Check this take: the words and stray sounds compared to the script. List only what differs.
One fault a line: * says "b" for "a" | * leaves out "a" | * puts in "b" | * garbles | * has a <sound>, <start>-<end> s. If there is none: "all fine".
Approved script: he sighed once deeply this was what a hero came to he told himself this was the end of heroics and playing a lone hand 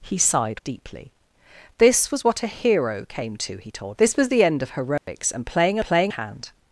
* leaves out "once"
* leaves out "himself"
* has a dropout, 5.0-5.1 s
* says "playing" for "lone"